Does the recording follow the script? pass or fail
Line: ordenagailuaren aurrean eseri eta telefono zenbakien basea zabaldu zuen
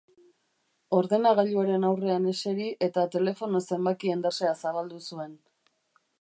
pass